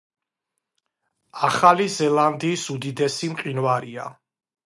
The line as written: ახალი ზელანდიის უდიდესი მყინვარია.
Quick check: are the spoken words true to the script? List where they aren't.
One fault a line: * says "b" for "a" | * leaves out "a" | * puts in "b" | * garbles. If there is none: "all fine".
all fine